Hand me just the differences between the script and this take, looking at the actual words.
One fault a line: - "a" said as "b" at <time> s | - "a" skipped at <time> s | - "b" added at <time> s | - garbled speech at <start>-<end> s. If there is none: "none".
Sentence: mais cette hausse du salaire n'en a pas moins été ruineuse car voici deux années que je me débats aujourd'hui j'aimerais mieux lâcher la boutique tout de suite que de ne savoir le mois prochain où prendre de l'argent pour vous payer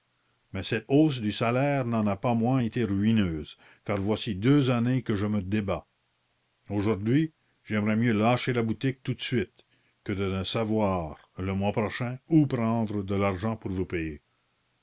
none